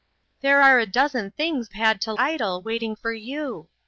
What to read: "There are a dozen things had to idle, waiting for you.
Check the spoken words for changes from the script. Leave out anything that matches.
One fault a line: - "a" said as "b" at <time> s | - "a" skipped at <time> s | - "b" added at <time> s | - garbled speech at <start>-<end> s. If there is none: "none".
none